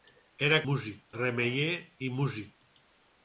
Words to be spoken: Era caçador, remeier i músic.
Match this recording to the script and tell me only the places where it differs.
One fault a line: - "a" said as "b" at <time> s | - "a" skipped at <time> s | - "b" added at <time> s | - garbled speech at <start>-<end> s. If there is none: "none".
- "caçador" said as "músic" at 0.7 s